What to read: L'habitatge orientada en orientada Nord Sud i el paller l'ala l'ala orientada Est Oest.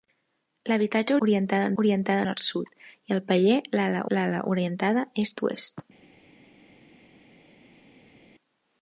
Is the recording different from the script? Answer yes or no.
no